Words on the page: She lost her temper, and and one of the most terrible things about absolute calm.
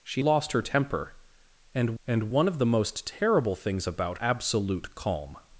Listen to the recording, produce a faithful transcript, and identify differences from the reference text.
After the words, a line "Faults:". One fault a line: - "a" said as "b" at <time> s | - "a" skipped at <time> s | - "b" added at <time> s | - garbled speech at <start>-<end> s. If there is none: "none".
She lost her temper, and and one of the most terrible things about absolute calm.
Faults:
none